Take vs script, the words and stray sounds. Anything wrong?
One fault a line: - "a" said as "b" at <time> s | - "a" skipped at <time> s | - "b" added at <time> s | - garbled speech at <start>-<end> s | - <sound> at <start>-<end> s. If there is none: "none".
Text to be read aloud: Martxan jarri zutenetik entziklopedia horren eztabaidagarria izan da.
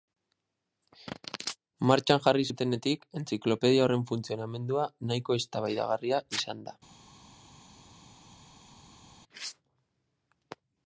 - "funtzionamendua nahiko" added at 4.1 s